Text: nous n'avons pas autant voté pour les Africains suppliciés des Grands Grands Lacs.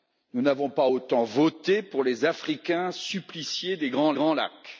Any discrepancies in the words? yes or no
no